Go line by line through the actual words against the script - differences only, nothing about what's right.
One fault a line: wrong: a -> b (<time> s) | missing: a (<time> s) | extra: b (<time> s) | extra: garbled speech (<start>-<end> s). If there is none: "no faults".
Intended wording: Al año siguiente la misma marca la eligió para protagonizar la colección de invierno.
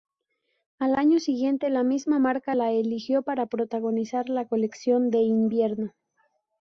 no faults